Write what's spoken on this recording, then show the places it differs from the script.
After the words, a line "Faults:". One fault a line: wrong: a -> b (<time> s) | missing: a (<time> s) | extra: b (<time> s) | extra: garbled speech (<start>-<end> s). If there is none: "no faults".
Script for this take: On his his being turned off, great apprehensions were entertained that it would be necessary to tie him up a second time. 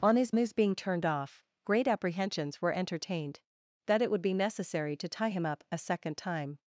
On his his being turned off, great apprehensions were entertained that it would be necessary to tie him up a second time.
Faults:
no faults